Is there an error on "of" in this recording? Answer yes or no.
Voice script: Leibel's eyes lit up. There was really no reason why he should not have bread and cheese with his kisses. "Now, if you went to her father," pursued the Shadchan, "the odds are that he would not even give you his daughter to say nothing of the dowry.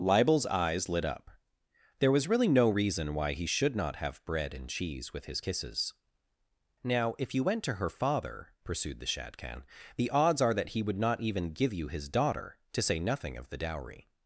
no